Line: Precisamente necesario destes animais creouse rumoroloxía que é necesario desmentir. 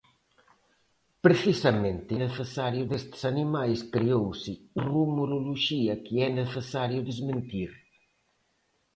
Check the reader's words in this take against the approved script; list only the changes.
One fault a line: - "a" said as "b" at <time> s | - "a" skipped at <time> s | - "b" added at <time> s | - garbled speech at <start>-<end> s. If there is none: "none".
none